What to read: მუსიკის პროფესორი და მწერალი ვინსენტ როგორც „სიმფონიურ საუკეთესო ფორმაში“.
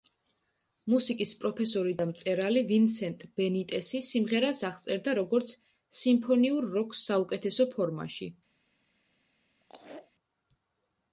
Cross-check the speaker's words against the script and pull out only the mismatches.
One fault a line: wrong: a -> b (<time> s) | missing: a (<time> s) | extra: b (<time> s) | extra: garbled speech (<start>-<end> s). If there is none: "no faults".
extra: ბენიტესი სიმღერას აღწერდა (3.4 s)
extra: როკს (6.8 s)